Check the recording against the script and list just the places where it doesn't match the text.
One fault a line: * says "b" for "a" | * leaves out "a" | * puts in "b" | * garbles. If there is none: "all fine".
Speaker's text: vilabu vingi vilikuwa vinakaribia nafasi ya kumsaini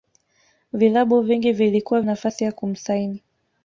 * leaves out "vinakaribia"